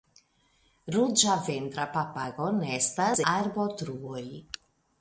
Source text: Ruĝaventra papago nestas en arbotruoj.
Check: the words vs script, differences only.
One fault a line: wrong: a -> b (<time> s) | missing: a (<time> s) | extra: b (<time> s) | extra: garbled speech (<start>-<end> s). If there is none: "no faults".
missing: en (3.2 s)